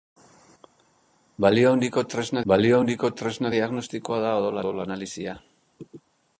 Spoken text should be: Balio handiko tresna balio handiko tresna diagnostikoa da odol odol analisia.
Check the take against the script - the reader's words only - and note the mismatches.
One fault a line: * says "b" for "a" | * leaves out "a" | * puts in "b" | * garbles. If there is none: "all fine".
all fine